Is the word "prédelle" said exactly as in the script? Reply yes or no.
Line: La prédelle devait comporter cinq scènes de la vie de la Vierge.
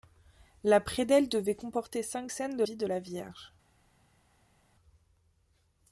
yes